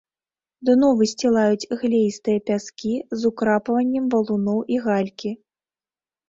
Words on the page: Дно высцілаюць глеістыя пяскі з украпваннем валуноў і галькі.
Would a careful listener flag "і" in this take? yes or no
no